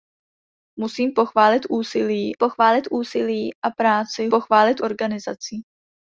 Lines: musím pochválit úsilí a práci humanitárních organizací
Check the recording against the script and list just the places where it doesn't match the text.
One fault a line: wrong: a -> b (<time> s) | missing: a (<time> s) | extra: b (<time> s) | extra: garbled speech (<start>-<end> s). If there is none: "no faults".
extra: pochválit úsilí (2.4 s)
wrong: humanitárních -> pochválit (4.3 s)